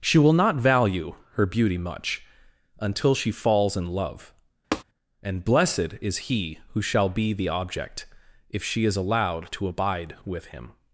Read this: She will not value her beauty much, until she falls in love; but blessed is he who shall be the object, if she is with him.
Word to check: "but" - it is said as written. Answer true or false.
false